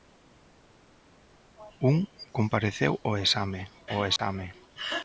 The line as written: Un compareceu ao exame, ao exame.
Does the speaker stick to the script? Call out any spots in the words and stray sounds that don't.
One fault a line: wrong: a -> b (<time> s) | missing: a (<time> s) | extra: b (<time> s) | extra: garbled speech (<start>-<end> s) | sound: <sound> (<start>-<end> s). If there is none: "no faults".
sound: dropout (4.2-4.2 s)